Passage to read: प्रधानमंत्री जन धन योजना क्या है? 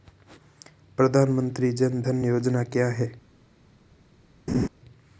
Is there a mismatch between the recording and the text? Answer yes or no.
no